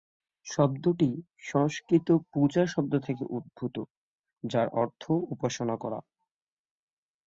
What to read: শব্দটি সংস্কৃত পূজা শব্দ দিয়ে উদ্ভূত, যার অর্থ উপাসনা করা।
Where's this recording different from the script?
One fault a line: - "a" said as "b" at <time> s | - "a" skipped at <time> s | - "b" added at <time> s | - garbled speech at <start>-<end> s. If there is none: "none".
- "দিয়ে" said as "থেকে" at 3.0 s